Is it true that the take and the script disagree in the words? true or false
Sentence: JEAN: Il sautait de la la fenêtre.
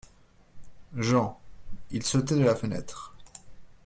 true